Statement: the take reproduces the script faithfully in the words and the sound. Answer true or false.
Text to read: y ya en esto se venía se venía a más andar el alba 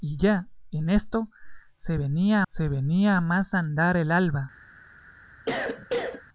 false